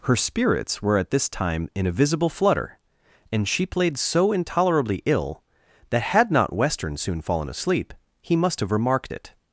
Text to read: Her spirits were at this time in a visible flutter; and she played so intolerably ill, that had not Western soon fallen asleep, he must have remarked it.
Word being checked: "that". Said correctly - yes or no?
yes